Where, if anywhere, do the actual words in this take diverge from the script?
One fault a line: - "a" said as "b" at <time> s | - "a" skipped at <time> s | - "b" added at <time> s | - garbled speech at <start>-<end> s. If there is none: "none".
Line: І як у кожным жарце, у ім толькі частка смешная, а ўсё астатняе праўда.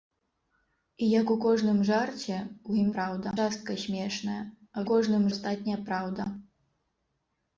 - "толькі" said as "праўда" at 3.0 s
- "ўсё" said as "кожным" at 4.9 s